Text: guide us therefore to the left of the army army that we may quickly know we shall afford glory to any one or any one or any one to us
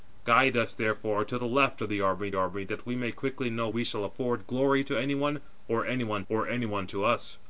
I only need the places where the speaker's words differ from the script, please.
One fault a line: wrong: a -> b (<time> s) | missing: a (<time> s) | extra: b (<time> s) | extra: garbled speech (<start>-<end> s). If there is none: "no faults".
no faults